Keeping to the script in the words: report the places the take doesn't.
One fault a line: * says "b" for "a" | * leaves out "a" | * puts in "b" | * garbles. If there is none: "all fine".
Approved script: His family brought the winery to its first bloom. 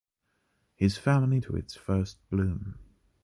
* leaves out "brought the winery"